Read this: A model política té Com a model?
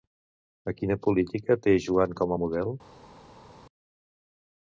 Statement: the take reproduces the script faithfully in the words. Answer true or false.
false